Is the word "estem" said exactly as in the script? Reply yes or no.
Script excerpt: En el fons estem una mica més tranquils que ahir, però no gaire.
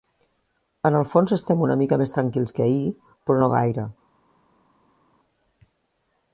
yes